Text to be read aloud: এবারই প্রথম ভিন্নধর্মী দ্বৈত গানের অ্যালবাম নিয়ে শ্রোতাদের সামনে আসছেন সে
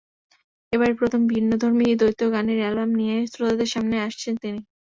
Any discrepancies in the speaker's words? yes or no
yes